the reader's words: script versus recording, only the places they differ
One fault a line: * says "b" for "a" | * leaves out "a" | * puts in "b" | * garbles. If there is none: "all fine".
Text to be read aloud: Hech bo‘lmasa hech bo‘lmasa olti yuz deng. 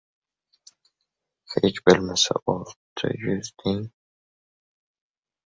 * leaves out "hech bo‘lmasa"